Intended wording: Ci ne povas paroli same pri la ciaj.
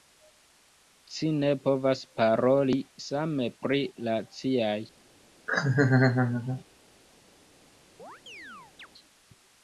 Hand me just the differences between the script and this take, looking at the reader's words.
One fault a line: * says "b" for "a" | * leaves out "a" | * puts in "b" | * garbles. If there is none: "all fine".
all fine